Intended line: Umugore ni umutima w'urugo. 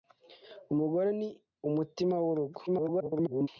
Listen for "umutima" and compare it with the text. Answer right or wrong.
right